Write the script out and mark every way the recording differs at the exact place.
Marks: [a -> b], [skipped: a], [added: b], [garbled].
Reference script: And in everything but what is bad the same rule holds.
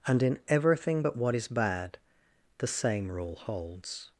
And in everything but what is bad the same rule holds.